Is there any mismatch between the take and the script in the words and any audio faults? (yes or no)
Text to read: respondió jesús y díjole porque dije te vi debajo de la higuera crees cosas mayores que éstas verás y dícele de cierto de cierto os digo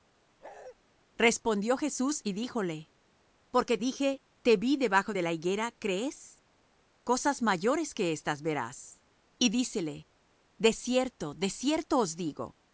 yes